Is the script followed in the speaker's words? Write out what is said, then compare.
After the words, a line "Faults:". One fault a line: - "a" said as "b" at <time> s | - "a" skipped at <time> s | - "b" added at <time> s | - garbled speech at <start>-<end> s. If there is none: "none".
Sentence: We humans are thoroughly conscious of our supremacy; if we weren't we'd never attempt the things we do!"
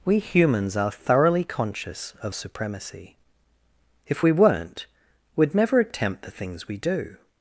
We humans are thoroughly conscious of supremacy; if we weren't we'd never attempt the things we do!"
Faults:
- "our" skipped at 2.4 s